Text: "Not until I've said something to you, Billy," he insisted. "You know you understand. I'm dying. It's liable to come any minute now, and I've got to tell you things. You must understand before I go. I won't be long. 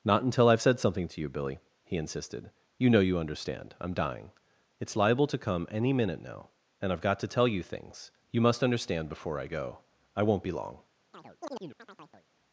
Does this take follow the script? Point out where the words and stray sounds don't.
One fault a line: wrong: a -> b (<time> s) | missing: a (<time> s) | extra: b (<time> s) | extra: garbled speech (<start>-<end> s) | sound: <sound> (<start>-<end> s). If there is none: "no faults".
sound: chirp (11.1-12.3 s)